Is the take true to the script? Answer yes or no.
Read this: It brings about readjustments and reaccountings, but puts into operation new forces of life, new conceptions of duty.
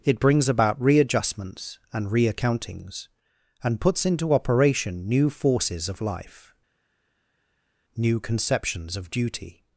no